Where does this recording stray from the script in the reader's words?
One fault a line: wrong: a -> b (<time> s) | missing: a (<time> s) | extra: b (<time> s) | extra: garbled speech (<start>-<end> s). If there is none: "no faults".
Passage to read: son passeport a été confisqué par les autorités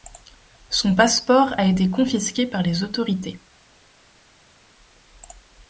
no faults